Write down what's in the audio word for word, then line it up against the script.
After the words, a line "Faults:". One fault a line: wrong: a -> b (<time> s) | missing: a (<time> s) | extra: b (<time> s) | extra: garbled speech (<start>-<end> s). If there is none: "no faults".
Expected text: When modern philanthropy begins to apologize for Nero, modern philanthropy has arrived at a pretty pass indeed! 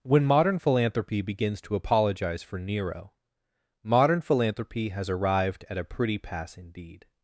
When modern philanthropy begins to apologize for Nero, modern philanthropy has arrived at a pretty pass indeed!
Faults:
no faults